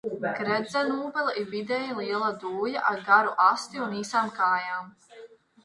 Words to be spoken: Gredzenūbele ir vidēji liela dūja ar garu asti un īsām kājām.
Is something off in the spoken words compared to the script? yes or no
no